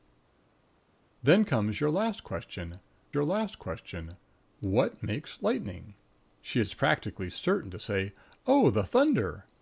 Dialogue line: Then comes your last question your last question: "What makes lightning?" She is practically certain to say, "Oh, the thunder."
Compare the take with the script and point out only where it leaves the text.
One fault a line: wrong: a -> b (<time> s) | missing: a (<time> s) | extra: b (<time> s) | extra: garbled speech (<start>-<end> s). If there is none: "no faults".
no faults